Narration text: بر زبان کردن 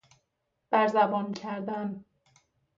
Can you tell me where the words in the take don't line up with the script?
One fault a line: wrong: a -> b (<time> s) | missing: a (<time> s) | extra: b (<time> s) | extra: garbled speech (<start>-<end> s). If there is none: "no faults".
no faults